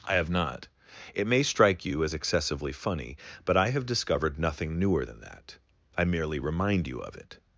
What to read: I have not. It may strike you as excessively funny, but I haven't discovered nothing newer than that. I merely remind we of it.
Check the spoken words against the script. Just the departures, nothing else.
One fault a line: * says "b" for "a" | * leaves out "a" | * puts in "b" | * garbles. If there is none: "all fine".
* says "have" for "haven't"
* says "you" for "we"